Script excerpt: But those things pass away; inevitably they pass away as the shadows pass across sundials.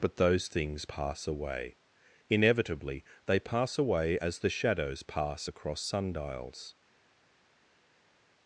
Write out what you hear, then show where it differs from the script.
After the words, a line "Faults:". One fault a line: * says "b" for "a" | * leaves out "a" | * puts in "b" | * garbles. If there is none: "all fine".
But those things pass away; inevitably they pass away as the shadows pass across sundials.
Faults:
all fine